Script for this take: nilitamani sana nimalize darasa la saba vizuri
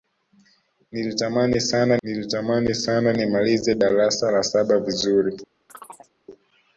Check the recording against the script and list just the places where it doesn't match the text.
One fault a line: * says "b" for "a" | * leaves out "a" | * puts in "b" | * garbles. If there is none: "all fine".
* puts in "nilitamani sana"